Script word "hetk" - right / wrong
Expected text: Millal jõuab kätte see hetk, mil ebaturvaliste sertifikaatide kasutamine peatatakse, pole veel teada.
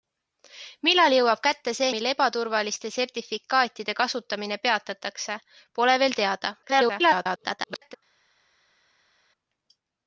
wrong